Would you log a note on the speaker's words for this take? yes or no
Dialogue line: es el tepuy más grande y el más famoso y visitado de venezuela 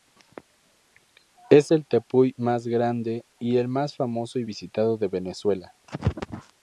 no